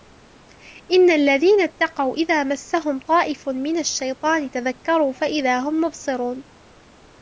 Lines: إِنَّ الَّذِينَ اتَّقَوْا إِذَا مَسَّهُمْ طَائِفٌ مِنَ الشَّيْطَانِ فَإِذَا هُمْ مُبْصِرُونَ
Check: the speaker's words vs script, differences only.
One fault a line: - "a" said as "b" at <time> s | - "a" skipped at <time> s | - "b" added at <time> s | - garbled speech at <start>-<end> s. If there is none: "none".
- "تَذَكَّرُوا" added at 4.5 s